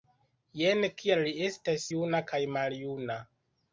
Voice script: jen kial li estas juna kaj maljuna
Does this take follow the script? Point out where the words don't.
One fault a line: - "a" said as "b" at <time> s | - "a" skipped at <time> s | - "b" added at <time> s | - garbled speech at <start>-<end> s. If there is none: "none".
none